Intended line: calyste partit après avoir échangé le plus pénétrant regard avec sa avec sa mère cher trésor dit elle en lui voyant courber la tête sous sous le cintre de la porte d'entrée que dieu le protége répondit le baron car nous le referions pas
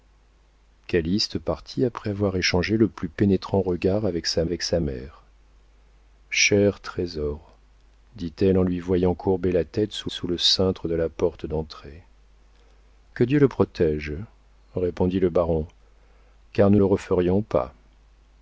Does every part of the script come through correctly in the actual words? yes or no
yes